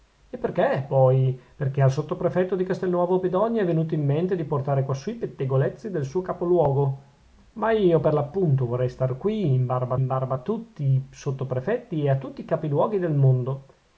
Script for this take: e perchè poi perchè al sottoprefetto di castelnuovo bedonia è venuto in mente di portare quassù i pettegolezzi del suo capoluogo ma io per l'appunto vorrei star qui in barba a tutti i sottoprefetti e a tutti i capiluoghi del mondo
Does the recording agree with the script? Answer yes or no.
no